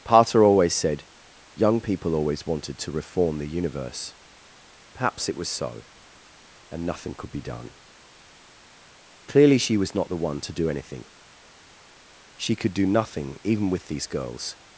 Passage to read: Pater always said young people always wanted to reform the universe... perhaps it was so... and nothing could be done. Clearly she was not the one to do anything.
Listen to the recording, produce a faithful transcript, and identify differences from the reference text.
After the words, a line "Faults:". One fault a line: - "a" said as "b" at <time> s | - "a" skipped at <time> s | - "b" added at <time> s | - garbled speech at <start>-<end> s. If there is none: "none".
Pater always said young people always wanted to reform the universe... perhaps it was so... and nothing could be done. Clearly she was not the one to do anything. She could do nothing even with these girls
Faults:
- "She could do nothing even with these girls" added at 12.4 s